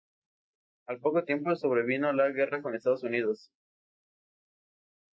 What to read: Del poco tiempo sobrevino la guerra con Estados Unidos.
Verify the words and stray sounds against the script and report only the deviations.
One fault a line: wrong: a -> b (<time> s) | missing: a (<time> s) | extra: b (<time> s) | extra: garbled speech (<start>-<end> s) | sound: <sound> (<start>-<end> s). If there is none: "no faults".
wrong: Del -> Al (0.9 s)